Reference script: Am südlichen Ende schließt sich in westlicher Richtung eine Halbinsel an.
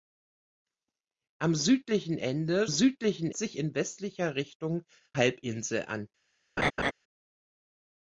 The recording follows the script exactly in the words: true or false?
false